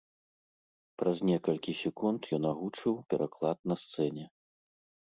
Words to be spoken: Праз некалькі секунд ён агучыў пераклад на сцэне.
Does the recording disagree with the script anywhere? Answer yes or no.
no